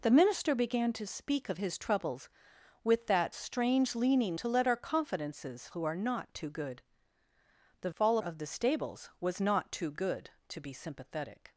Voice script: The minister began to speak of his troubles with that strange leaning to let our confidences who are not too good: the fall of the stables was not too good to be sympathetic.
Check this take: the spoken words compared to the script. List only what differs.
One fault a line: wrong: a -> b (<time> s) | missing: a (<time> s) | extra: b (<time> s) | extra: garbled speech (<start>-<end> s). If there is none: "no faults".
no faults